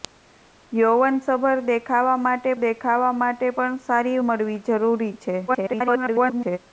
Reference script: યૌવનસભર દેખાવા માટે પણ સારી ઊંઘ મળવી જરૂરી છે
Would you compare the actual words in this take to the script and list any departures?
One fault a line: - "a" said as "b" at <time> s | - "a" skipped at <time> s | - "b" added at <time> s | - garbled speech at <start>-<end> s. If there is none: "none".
- "દેખાવા માટે" added at 2.6 s
- "ઊંઘ" skipped at 4.2 s
- garbled speech at 5.5-6.6 s